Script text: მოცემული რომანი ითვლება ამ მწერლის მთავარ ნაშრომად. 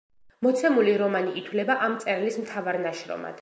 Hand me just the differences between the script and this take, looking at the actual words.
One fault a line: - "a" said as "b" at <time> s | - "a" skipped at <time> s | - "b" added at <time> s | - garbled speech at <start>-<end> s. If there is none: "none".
none